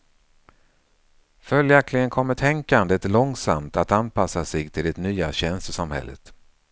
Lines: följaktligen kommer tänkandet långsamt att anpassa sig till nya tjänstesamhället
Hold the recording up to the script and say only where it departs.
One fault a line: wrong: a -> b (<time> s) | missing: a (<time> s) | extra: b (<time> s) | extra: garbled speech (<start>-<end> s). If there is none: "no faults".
extra: det (4.8 s)